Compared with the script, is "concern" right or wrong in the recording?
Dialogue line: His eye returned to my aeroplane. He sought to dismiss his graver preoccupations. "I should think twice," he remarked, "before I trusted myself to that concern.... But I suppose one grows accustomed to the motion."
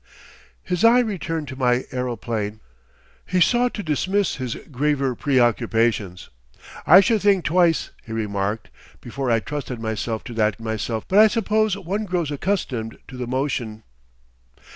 wrong